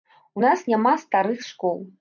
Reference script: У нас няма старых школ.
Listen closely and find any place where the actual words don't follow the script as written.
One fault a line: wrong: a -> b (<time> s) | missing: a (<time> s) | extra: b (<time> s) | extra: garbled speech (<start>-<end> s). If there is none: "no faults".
no faults